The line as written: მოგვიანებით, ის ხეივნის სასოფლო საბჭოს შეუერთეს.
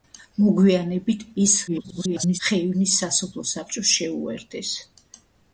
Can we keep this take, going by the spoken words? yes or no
no